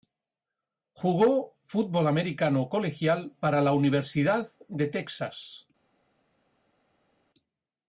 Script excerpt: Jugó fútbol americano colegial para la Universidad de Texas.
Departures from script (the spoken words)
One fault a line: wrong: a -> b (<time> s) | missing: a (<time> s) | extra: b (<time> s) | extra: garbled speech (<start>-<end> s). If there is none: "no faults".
no faults